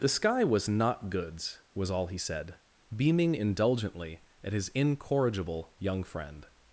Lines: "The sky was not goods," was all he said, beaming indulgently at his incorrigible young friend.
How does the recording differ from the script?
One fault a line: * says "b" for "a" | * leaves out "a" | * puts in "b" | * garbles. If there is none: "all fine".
all fine